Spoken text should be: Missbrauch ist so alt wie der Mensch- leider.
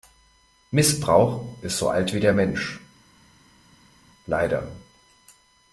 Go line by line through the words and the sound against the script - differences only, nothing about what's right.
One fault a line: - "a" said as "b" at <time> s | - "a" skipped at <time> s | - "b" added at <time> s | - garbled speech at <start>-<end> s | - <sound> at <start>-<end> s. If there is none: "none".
none